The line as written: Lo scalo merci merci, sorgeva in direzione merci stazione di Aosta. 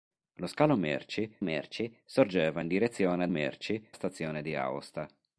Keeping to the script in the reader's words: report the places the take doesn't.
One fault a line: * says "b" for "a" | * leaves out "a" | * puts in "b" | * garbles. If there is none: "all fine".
all fine